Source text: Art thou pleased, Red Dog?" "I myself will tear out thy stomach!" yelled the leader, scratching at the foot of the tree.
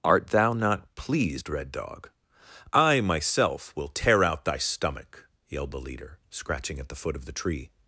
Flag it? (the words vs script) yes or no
yes